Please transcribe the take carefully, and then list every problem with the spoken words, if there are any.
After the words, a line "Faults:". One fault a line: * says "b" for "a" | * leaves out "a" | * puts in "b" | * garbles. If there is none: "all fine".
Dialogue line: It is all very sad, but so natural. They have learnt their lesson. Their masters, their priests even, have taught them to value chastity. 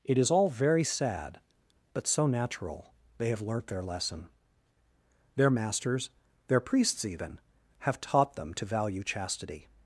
It is all very sad, but so natural. They have learnt their lesson. Their masters, their priests even, have taught them to value chastity.
Faults:
all fine